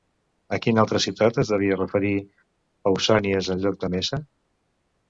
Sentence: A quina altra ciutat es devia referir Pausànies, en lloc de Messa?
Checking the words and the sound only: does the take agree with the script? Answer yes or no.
yes